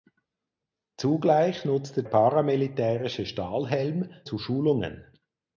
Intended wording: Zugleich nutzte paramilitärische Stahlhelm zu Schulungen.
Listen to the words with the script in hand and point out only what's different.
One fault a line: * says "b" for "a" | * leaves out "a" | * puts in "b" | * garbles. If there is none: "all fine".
all fine